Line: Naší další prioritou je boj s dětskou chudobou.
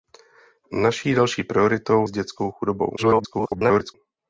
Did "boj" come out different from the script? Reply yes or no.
yes